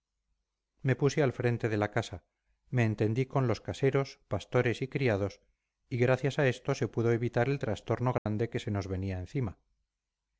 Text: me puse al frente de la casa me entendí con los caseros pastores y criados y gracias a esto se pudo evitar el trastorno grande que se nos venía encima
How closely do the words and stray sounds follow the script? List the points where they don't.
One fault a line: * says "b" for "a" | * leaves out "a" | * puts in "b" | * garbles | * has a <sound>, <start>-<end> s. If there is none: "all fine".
* has a dropout, 8.2-8.3 s